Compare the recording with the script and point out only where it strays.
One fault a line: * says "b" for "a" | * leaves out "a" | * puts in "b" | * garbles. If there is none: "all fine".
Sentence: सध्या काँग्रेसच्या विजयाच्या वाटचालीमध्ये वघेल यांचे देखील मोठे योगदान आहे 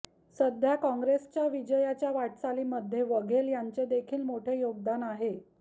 all fine